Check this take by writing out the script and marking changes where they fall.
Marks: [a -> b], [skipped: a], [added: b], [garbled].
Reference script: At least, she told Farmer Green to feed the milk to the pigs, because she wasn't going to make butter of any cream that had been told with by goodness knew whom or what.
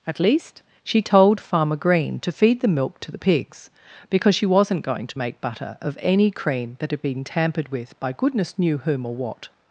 At least, she told Farmer Green to feed the milk to the pigs, because she wasn't going to make butter of any cream that had been [told -> tampered] with by goodness knew whom or what.